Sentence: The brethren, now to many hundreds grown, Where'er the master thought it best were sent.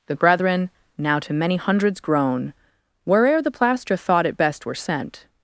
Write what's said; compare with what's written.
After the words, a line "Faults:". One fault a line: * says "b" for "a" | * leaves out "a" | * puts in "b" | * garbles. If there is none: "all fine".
The brethren, now to many hundreds grown, Where'er the plaster thought it best were sent.
Faults:
* says "plaster" for "master"